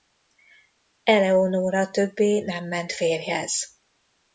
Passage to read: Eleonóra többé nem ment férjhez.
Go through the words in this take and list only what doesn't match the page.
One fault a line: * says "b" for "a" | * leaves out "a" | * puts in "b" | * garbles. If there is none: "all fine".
all fine